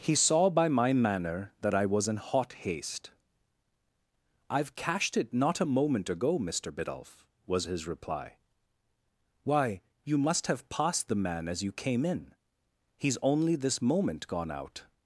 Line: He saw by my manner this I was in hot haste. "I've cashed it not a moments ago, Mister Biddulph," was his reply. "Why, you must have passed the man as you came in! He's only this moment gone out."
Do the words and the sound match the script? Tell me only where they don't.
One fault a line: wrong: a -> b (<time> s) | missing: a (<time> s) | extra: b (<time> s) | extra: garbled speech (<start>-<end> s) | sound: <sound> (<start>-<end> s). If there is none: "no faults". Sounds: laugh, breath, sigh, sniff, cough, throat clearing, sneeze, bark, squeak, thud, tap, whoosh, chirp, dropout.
wrong: this -> that (1.6 s)
wrong: moments -> moment (5.8 s)